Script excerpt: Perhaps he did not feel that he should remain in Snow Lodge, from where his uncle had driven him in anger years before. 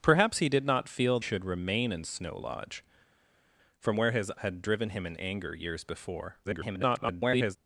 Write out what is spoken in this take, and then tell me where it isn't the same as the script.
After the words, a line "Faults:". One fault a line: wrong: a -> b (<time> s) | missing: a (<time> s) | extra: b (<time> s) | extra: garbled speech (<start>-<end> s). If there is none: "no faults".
Perhaps he did not feel should remain in Snow Lodge, from where his had driven him in anger years before. [garbled]
Faults:
missing: that he (1.2 s)
missing: uncle (4.3 s)
extra: garbled speech (6.4-7.6 s)